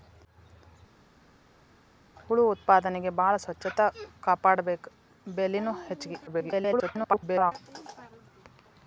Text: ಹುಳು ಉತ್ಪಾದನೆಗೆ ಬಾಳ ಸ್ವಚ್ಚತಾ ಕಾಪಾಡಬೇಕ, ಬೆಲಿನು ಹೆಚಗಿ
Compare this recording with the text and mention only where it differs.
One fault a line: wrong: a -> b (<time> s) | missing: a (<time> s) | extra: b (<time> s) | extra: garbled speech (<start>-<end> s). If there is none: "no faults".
extra: garbled speech (6.3-7.5 s)